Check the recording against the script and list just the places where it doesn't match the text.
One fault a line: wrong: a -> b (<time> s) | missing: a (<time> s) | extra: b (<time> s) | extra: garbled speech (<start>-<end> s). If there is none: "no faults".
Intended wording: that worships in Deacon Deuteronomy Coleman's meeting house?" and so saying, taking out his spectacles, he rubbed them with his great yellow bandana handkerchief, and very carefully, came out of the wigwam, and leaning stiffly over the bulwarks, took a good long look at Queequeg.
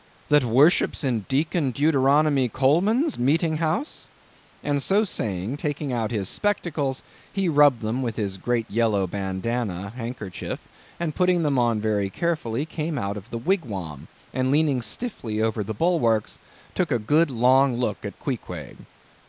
extra: putting them on (11.2 s)